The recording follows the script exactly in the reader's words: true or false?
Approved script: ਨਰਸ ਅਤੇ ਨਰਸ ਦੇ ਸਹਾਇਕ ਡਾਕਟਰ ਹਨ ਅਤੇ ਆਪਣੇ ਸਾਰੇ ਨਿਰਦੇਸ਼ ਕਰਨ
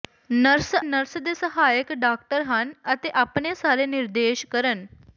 false